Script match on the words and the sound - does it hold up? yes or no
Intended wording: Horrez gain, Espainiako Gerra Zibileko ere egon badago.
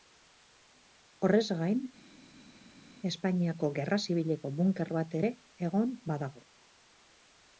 no